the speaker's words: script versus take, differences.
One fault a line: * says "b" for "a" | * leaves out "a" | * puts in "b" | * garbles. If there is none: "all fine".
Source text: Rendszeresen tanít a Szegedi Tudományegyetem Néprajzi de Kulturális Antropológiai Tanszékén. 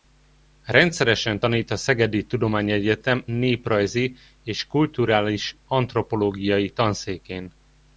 * says "és" for "de"